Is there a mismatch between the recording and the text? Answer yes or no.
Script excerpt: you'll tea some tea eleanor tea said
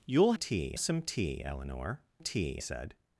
no